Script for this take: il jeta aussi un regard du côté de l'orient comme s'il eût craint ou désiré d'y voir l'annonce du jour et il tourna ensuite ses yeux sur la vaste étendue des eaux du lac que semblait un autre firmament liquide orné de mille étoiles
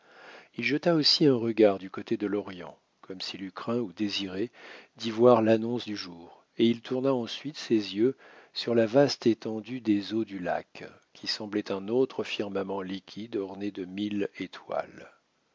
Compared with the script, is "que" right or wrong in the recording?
wrong